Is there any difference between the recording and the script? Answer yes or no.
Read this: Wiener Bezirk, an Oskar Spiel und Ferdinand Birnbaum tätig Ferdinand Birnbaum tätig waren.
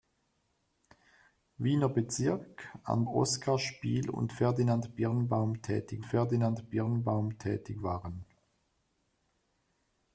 no